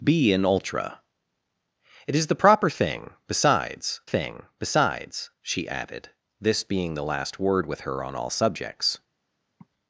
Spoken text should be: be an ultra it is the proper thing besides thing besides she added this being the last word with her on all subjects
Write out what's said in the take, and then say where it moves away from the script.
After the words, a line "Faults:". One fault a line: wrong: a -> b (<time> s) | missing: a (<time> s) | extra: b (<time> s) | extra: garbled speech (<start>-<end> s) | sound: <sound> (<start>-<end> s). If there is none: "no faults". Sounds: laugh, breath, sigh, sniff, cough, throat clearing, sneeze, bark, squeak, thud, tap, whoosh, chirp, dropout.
be an ultra it is the proper thing besides thing besides she added this being the last word with her on all subjects
Faults:
sound: sigh (9.6-9.7 s)